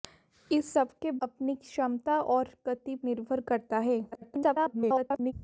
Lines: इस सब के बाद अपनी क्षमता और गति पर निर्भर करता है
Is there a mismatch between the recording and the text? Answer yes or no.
yes